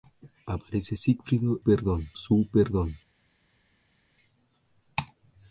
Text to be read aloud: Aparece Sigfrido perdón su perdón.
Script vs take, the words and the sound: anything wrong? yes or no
no